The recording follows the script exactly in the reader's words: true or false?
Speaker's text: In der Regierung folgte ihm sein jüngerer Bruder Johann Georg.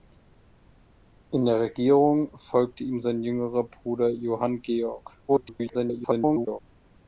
false